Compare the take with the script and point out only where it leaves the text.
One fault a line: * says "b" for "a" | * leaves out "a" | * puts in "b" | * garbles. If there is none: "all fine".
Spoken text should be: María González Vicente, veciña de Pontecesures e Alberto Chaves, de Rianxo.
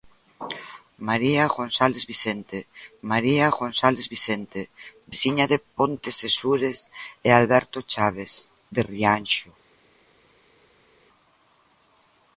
* puts in "maría González Vicente"